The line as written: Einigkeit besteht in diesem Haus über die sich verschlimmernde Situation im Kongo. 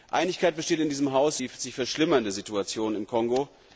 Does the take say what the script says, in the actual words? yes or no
no